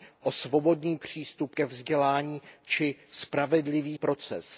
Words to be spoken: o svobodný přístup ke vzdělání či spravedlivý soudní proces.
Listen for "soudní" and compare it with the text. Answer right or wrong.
wrong